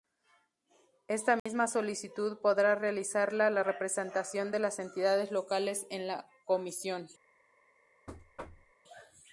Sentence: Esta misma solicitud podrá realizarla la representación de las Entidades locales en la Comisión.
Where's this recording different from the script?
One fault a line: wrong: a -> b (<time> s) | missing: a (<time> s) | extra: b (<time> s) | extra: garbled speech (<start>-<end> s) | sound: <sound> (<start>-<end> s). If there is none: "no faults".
sound: dropout (1.4-1.5 s)
sound: thud (8.1-8.7 s)